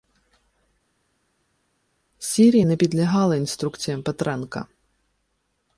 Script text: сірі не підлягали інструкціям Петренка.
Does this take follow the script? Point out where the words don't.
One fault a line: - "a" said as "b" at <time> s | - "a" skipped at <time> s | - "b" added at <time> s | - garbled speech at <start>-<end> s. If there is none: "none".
none